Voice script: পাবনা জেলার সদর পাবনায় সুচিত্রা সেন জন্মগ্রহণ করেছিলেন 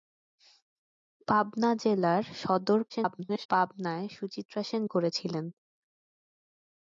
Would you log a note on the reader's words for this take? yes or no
yes